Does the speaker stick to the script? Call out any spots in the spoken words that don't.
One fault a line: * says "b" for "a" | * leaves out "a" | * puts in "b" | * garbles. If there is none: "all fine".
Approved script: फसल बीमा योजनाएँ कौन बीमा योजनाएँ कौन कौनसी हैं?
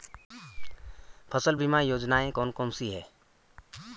* leaves out "बीमा योजनाएँ कौन"